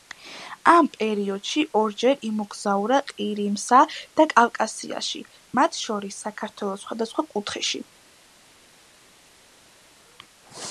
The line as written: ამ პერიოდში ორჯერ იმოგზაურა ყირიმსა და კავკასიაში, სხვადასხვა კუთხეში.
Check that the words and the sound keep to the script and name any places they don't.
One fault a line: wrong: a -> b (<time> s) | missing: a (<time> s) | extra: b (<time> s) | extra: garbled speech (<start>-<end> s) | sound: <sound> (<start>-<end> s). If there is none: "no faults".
extra: მათ შორის საქართველოს (5.6 s)